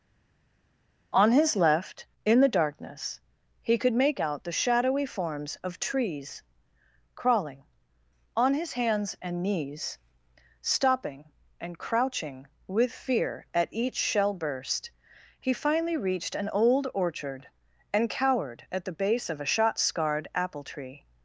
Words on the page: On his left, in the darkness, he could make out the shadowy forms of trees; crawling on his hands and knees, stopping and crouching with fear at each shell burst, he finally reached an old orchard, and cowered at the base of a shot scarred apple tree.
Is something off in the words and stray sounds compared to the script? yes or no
no